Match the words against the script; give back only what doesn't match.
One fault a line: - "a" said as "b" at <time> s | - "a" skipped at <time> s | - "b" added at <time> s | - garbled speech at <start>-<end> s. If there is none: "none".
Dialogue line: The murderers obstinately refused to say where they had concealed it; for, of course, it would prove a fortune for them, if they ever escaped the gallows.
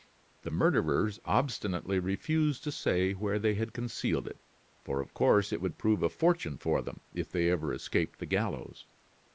none